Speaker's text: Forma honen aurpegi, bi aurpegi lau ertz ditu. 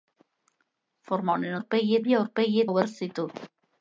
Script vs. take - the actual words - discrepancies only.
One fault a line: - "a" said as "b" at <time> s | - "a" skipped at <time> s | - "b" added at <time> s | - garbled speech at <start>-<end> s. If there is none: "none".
none